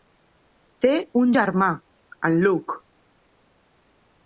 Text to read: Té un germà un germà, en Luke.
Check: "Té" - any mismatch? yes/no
no